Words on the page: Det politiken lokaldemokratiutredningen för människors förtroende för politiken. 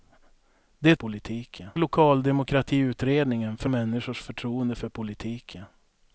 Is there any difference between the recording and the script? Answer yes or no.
no